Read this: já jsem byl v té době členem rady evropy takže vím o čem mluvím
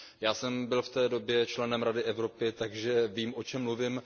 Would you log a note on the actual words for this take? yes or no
no